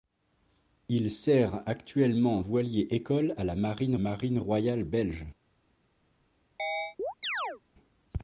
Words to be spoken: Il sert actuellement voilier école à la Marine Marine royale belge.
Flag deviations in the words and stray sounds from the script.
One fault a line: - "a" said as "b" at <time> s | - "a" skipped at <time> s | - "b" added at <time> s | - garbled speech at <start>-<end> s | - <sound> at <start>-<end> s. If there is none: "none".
- chirp at 6.6-7.6 s